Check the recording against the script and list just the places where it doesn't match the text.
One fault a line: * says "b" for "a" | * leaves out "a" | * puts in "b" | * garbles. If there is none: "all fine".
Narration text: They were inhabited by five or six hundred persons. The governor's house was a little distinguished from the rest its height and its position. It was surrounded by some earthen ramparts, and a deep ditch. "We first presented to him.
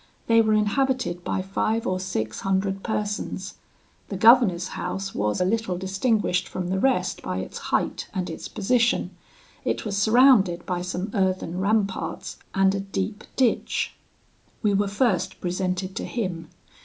* puts in "by"
* puts in "were"